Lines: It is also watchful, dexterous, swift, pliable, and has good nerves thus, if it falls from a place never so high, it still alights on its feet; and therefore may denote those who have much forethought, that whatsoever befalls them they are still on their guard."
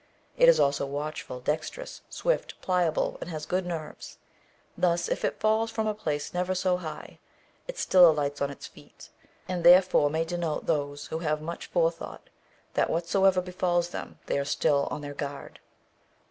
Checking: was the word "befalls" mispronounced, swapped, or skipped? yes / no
no